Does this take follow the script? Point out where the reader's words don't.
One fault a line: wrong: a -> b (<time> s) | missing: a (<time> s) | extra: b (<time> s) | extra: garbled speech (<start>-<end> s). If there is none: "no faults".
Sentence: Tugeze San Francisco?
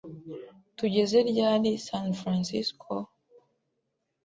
extra: ryari (1.3 s)